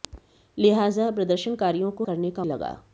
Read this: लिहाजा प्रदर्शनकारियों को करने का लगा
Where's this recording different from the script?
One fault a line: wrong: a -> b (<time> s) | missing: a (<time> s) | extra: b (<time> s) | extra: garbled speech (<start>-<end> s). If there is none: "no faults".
no faults